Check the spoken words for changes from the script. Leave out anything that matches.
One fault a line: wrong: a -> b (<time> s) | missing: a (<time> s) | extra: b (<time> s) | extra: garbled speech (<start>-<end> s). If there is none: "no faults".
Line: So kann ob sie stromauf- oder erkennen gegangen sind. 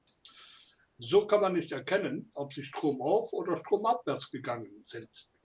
extra: man nicht erkennen (1.4 s)
wrong: erkennen -> stromabwärts (3.6 s)